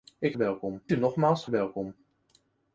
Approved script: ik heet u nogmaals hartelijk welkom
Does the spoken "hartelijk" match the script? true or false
false